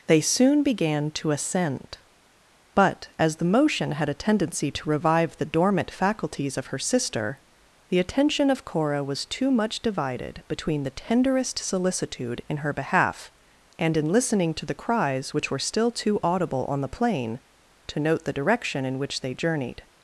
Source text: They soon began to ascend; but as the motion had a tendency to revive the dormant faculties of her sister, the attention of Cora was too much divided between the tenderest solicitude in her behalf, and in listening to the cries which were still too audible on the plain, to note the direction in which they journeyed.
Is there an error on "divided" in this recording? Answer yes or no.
no